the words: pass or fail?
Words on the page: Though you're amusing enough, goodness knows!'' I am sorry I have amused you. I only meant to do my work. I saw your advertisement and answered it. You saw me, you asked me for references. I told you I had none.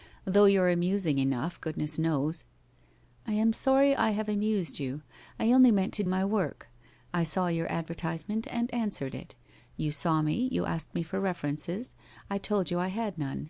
fail